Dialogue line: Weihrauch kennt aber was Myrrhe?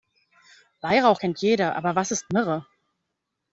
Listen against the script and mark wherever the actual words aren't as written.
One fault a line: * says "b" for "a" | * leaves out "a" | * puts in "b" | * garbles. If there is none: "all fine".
* puts in "jeder"
* puts in "ist"